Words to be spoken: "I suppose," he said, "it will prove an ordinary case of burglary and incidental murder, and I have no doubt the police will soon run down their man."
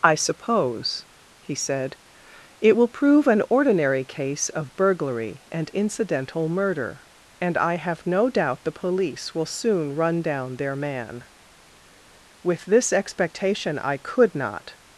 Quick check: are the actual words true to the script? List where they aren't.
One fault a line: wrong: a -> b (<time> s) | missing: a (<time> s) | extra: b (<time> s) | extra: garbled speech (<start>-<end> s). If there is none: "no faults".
extra: With this expectation I could not (12.4 s)